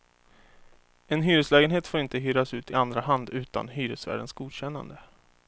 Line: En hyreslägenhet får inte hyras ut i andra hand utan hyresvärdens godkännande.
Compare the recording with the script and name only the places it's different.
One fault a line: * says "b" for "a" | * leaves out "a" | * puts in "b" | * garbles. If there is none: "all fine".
all fine